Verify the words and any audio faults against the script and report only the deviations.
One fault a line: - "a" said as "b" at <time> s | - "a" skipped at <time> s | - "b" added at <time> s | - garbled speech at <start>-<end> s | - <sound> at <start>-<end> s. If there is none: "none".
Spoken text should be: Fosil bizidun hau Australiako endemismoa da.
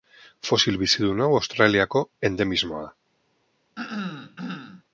- throat clearing at 3.8-4.8 s